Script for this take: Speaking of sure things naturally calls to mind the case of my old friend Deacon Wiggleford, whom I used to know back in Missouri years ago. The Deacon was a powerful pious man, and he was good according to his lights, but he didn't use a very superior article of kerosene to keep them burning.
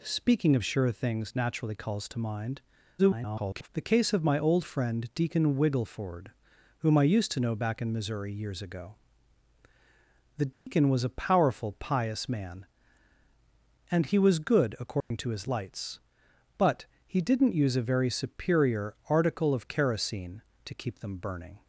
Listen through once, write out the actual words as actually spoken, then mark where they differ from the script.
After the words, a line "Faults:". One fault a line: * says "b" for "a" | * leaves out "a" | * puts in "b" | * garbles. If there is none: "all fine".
Speaking of sure things naturally calls to mind [garbled] the case of my old friend Deacon Wiggleford, whom I used to know back in Missouri years ago. The Deacon was a powerful pious man, and he was good according to his lights, but he didn't use a very superior article of kerosene to keep them burning.
Faults:
* garbles